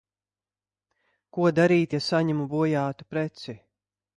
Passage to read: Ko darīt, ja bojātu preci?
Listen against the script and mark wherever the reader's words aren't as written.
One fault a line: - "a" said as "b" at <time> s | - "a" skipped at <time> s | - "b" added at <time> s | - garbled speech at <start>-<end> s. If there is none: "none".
- "saņemu" added at 2.1 s